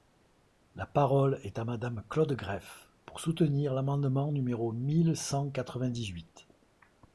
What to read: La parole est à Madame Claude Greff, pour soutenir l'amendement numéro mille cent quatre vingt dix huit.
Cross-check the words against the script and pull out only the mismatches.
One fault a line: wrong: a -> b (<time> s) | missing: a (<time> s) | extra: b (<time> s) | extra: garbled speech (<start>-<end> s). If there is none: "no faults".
no faults